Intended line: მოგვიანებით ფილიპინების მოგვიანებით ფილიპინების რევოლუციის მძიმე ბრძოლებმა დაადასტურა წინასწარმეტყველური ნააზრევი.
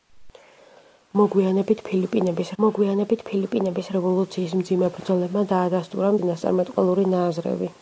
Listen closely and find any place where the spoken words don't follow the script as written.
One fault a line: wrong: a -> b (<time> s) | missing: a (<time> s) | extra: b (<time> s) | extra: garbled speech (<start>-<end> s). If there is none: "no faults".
no faults